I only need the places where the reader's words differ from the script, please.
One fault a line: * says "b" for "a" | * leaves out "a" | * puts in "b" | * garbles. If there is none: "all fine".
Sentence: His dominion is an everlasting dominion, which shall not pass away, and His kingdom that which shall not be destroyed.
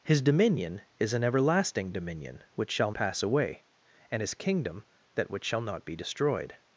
* leaves out "not"